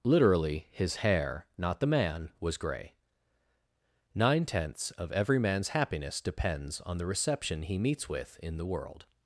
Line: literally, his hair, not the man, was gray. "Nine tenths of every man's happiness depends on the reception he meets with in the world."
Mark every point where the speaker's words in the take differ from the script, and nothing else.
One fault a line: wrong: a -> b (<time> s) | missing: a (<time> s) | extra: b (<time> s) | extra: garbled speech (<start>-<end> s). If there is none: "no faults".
no faults